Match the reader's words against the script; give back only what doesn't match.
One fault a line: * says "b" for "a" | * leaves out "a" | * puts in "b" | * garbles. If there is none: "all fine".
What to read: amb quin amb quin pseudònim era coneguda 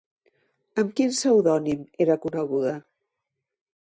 * leaves out "amb quin"